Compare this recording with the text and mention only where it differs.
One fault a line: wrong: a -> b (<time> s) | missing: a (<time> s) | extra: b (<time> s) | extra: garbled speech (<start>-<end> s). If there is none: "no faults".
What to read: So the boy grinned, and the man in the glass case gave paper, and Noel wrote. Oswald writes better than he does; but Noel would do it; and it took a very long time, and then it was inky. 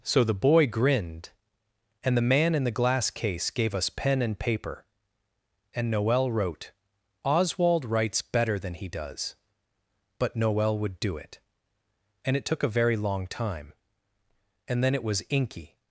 extra: us pen and (3.8 s)